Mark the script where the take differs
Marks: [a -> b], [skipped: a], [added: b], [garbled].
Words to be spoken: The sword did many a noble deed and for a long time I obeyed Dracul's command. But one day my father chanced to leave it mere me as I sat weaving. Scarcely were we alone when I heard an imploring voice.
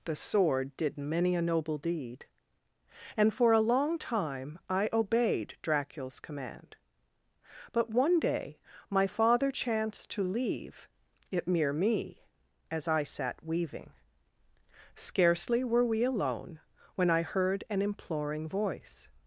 The sword did many a noble deed and for a long time I obeyed Dracul's command. But one day my father chanced to leave it mere me as I sat weaving. Scarcely were we alone when I heard an imploring voice.